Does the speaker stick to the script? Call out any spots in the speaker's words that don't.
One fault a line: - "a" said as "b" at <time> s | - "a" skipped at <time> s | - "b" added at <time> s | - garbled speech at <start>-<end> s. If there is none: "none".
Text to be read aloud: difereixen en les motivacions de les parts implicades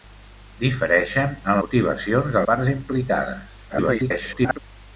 - "les" skipped at 1.6 s
- "les" skipped at 2.4 s
- garbled speech at 3.7-4.6 s